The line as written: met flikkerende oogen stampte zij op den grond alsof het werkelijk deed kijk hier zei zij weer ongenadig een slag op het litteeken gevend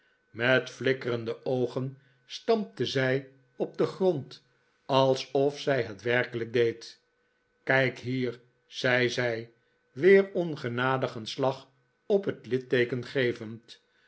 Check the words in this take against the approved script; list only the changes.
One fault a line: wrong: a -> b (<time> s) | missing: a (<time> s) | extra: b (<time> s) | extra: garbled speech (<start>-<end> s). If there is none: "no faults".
extra: zij (5.6 s)